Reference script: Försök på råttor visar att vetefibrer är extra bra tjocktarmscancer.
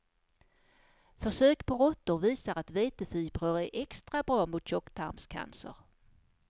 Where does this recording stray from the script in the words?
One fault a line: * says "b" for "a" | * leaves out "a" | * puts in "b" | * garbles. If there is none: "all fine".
* puts in "mot"